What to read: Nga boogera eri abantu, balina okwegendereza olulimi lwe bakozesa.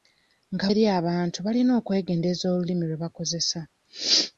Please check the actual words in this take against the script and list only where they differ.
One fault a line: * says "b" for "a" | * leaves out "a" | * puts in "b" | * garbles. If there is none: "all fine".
* leaves out "boogera"